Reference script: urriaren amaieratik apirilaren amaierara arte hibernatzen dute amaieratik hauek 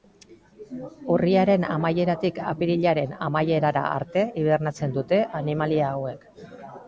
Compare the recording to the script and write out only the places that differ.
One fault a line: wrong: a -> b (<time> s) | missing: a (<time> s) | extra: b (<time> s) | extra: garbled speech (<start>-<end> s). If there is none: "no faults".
wrong: amaieratik -> animalia (5.4 s)